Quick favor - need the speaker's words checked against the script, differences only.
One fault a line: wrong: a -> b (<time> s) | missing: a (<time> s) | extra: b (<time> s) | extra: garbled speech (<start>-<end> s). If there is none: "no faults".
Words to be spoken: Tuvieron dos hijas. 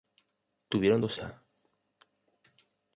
no faults